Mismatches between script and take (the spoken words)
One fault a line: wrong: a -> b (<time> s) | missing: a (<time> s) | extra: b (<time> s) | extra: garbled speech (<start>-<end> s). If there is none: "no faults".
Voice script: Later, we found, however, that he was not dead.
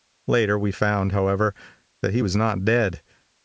no faults